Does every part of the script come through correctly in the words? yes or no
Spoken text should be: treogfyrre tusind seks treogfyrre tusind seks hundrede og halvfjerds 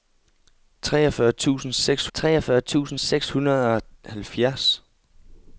yes